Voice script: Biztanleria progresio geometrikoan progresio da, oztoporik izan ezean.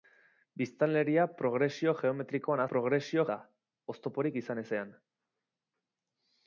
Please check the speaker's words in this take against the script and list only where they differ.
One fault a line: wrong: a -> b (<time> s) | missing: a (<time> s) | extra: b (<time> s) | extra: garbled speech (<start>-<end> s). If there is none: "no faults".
no faults